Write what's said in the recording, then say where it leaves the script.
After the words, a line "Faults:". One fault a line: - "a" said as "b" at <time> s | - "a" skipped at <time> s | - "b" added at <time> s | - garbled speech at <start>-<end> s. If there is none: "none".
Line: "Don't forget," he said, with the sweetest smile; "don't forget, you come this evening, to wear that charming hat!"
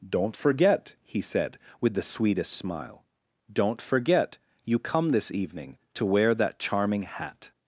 "Don't forget," he said, with the sweetest smile; "don't forget, you come this evening, to wear that charming hat!"
Faults:
none